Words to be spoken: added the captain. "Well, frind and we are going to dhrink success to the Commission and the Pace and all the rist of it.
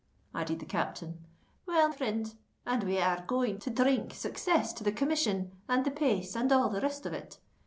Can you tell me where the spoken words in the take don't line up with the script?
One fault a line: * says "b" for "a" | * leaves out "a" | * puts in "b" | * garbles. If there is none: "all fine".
all fine